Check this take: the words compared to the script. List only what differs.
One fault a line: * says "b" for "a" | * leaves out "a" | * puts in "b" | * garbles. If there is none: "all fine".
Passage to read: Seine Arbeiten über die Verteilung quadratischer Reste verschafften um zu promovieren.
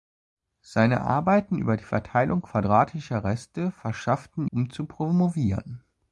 all fine